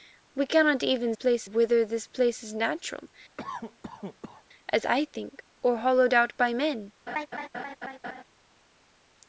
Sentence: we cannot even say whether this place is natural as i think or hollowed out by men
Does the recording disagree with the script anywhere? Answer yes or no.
yes